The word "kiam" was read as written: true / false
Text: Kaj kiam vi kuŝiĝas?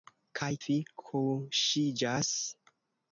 false